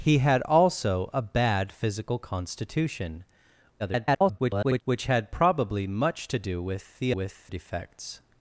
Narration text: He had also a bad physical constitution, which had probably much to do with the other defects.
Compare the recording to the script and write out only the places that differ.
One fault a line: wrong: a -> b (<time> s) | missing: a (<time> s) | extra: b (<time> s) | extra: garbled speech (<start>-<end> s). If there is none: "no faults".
extra: garbled speech (3.8-4.8 s)
wrong: other -> with (7.1 s)